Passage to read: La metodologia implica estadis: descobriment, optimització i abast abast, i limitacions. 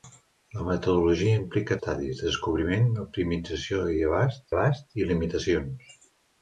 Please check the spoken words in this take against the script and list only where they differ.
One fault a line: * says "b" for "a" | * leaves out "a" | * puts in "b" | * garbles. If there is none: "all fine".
all fine